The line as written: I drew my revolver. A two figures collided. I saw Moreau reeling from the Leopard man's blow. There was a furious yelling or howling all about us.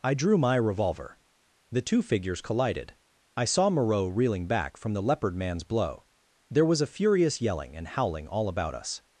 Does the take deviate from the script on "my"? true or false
false